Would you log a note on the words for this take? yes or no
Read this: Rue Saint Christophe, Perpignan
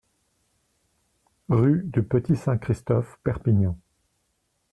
yes